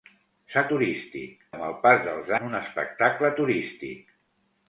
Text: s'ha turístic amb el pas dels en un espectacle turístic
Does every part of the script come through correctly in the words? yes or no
yes